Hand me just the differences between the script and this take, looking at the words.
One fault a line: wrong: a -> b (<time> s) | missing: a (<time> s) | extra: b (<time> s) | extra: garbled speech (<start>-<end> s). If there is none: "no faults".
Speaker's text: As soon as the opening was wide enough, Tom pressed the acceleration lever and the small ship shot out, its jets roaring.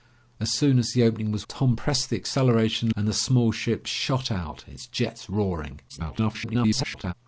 missing: wide enough (1.4 s)
missing: lever (2.9 s)
extra: garbled speech (5.9-7.1 s)